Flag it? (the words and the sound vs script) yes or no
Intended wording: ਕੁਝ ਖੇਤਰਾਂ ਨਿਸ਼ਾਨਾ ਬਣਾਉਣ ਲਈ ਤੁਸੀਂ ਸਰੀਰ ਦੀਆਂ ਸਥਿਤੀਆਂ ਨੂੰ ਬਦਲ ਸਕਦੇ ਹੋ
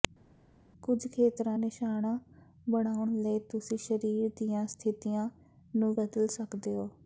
no